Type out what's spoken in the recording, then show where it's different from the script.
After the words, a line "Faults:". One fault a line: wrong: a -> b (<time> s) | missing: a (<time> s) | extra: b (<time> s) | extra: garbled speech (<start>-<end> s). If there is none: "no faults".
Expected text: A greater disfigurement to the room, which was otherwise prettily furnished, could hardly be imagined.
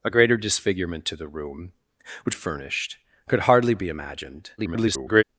A greater disfigurement to the room, which furnished, could hardly be imagined. [garbled]
Faults:
missing: was otherwise prettily (2.3 s)
extra: garbled speech (4.6-5.2 s)